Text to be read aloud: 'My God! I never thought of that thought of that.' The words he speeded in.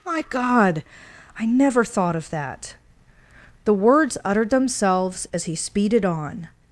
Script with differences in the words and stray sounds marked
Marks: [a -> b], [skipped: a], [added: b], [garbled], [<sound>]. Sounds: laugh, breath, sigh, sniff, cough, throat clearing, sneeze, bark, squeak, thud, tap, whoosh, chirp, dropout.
'My God! I never thought of that [thought of that.' The words -> The words uttered themselves as] he speeded [in. -> on]